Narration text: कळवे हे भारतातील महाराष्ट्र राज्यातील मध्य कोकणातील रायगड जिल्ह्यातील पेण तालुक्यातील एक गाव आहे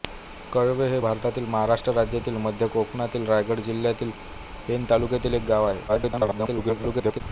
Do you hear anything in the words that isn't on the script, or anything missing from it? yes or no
yes